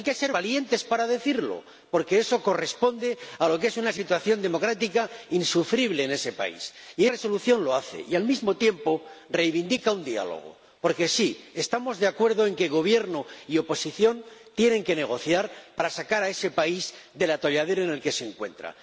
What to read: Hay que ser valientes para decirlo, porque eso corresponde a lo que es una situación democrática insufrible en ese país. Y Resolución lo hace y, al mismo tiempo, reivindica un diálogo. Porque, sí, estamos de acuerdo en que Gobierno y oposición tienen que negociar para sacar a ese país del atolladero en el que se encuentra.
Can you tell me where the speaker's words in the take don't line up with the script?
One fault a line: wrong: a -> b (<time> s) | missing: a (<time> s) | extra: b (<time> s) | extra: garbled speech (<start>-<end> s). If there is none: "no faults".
no faults